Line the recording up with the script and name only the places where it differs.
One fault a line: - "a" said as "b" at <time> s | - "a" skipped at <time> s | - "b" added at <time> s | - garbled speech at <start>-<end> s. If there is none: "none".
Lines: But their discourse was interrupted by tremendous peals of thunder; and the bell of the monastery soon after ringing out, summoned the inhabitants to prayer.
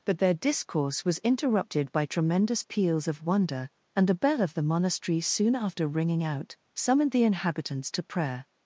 - "thunder" said as "wonder" at 3.2 s